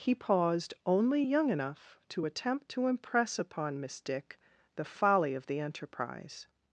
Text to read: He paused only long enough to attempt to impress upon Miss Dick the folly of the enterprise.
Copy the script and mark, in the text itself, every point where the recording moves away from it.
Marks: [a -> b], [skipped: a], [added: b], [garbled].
He paused only [long -> young] enough to attempt to impress upon Miss Dick the folly of the enterprise.